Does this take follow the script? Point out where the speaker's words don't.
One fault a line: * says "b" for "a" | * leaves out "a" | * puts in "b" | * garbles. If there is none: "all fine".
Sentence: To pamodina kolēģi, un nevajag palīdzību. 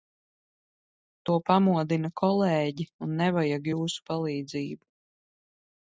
* puts in "jūsu"